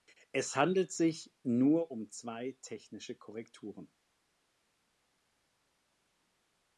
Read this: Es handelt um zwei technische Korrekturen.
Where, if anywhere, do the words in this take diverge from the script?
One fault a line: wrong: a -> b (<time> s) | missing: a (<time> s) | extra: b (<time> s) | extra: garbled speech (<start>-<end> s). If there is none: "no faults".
extra: sich nur (0.9 s)